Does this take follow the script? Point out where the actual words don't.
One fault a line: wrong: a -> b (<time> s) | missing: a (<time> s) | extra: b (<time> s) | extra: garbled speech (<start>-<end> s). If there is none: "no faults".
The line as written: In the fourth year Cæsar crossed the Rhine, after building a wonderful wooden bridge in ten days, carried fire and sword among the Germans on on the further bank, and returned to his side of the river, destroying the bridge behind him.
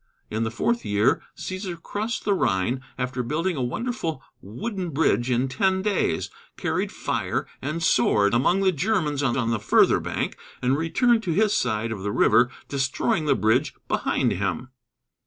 no faults